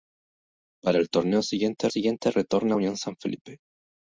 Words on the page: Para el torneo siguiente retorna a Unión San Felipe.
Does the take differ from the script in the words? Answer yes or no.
yes